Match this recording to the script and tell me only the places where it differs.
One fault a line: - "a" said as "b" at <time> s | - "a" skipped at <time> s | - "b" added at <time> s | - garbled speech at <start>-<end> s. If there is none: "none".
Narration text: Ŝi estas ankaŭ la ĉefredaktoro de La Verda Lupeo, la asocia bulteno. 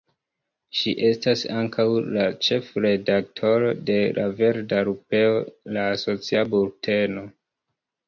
none